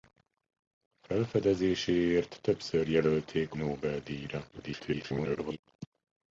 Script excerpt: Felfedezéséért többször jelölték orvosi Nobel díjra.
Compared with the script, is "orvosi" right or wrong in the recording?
wrong